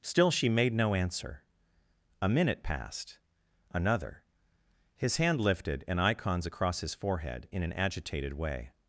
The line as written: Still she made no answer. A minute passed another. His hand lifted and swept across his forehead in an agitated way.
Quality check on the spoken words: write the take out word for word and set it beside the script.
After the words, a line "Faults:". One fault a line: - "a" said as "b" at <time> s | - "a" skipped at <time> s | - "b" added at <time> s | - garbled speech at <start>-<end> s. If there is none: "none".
Still she made no answer. A minute passed another. His hand lifted and icons across his forehead in an agitated way.
Faults:
- "swept" said as "icons" at 6.0 s